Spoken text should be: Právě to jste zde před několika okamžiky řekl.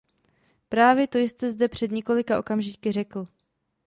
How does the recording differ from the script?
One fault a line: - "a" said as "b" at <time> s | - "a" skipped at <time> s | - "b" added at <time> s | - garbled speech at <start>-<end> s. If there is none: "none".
none